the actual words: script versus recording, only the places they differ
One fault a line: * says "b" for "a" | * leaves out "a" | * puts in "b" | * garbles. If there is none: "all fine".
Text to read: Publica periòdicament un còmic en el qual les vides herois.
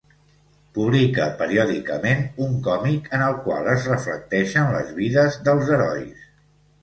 * puts in "es reflecteixen"
* puts in "dels"